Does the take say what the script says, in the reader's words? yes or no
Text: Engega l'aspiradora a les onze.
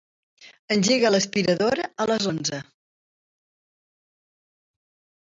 yes